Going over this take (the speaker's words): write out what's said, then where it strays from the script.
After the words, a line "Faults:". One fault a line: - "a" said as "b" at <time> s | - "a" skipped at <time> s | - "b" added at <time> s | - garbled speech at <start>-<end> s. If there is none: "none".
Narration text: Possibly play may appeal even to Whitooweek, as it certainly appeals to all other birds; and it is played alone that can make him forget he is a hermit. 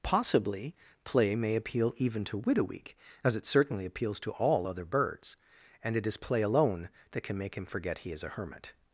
Possibly play may appeal even to Whitooweek, as it certainly appeals to all other birds; and it is play alone that can make him forget he is a hermit.
Faults:
- "played" said as "play" at 6.2 s